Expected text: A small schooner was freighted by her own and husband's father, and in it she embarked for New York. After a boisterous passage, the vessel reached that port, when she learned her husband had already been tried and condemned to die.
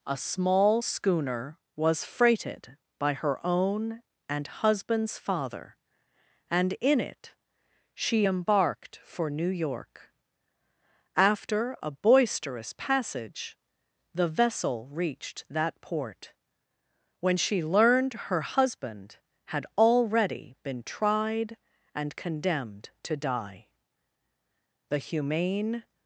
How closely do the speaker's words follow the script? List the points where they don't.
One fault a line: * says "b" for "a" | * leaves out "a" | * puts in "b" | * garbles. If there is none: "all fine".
* puts in "The humane"